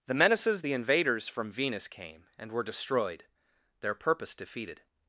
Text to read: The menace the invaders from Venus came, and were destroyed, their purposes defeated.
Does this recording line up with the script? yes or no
no